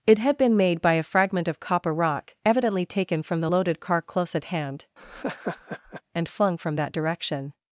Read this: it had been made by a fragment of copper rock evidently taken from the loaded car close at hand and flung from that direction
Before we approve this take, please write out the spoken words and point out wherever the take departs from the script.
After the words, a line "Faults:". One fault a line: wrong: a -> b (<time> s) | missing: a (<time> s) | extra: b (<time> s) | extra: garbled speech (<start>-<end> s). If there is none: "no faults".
it had been made by a fragment of copper rock evidently taken from the loaded car close at hand and flung from that direction
Faults:
no faults